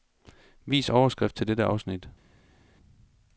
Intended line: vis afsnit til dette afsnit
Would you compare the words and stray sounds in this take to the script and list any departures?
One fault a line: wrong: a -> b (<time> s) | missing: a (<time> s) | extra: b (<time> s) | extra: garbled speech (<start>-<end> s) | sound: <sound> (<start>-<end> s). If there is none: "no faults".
wrong: afsnit -> overskrift (0.9 s)